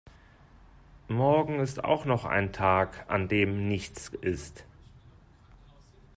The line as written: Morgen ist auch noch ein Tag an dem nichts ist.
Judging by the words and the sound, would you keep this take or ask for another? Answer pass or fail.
pass